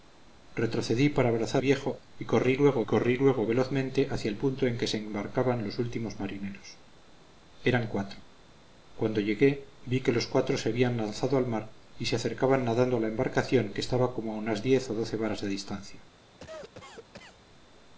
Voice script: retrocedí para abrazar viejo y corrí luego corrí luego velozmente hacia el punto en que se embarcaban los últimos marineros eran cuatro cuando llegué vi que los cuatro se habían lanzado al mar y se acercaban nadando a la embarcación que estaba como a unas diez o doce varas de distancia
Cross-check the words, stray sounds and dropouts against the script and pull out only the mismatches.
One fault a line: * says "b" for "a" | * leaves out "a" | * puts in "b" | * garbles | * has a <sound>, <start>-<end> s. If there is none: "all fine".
* has a cough, 16.4-17.4 s